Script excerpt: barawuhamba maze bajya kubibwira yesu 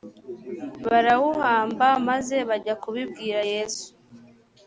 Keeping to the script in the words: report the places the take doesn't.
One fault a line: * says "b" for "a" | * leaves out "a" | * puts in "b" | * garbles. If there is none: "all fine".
all fine